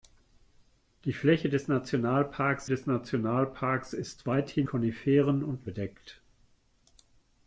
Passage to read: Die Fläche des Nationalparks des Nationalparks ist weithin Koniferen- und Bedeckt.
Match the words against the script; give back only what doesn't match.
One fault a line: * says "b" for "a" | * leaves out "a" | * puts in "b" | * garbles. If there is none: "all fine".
all fine